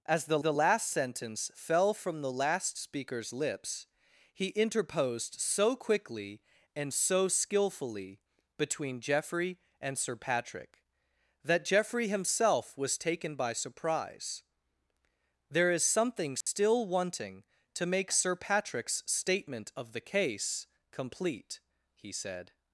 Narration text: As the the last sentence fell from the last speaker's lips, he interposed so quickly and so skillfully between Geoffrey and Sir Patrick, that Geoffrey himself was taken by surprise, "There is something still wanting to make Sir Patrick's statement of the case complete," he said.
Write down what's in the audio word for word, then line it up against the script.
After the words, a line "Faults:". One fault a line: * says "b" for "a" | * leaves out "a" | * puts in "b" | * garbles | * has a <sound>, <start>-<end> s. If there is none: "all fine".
As the the last sentence fell from the last speaker's lips, he interposed so quickly and so skillfully between Geoffrey and Sir Patrick, that Geoffrey himself was taken by surprise, "There is something still wanting to make Sir Patrick's statement of the case complete," he said.
Faults:
* has a dropout, 16.4-16.5 s